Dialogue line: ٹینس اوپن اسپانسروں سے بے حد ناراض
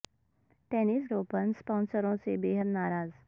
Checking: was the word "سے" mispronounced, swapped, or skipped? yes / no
no